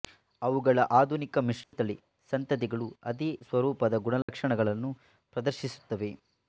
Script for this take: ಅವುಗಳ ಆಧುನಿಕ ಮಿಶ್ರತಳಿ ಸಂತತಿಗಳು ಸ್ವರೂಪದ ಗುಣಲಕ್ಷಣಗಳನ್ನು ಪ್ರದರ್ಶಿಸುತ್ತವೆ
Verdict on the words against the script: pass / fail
fail